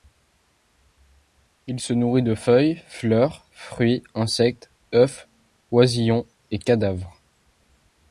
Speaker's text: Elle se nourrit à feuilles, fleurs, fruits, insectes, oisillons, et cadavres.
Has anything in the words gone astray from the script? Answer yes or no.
yes